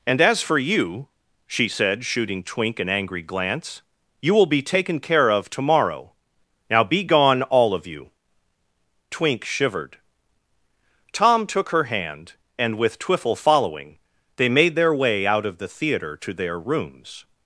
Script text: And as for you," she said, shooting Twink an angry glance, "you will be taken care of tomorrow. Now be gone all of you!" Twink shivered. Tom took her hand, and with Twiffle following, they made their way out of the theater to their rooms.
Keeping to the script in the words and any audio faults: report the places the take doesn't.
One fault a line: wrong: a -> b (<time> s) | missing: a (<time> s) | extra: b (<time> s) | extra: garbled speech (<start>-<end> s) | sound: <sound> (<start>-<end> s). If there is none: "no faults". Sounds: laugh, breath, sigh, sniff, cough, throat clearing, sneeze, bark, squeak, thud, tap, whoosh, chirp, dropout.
no faults